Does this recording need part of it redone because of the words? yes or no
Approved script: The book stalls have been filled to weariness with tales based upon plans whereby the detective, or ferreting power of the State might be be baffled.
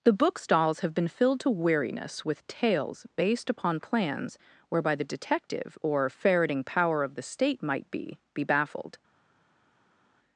no